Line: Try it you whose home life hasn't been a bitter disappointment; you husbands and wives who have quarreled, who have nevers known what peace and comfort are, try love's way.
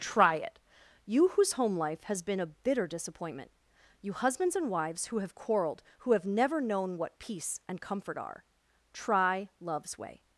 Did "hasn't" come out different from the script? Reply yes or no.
yes